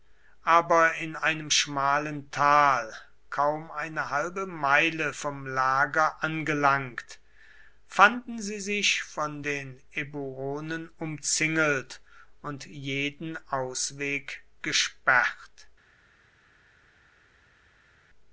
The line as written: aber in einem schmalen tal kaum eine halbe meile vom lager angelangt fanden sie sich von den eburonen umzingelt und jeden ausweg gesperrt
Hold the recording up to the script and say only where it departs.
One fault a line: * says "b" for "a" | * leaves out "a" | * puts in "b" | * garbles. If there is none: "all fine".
all fine